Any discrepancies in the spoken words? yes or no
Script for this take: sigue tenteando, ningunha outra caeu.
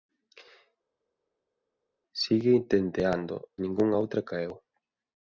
no